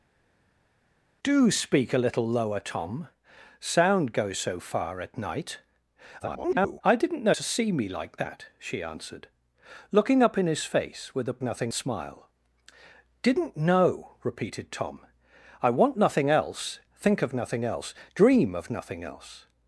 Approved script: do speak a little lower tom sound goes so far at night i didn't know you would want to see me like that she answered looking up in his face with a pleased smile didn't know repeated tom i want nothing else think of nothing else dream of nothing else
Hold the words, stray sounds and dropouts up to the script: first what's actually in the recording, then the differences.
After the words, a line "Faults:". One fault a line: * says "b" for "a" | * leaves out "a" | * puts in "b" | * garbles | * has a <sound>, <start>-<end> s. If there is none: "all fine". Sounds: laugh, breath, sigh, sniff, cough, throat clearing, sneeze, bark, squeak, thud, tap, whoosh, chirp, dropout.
do speak a little lower tom sound goes so far at night [garbled] i didn't know to see me like that she answered looking up in his face with a nothing smile didn't know repeated tom i want nothing else think of nothing else dream of nothing else
Faults:
* garbles
* leaves out "you would want"
* says "nothing" for "pleased"